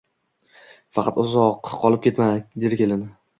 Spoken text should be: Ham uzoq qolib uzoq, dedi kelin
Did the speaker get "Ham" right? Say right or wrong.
wrong